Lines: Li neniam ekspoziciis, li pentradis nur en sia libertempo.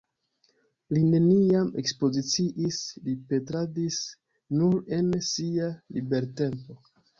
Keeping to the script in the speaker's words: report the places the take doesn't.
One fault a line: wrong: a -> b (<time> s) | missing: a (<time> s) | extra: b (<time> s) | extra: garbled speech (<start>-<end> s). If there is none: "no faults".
no faults